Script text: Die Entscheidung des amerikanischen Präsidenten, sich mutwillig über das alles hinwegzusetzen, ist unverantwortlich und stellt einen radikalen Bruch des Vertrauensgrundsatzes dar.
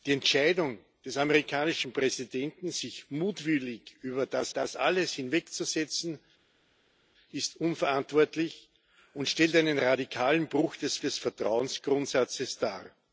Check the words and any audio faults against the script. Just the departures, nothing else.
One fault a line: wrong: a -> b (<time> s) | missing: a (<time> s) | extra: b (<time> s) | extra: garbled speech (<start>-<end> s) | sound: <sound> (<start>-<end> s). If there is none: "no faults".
extra: das (4.5 s)
extra: des (11.0 s)